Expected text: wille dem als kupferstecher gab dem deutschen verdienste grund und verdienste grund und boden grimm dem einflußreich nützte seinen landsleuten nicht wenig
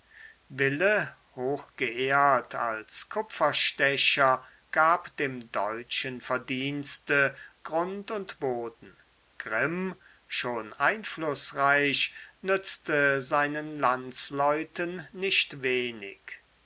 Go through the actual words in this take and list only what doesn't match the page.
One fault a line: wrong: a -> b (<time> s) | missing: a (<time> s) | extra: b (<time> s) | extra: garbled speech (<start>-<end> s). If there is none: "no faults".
wrong: dem -> hochgeehrt (1.4 s)
missing: verdienste grund und (8.4 s)
wrong: dem -> schon (10.3 s)